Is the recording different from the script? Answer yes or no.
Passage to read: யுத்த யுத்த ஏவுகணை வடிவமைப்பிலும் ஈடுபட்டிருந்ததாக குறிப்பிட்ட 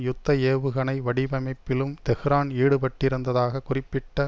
yes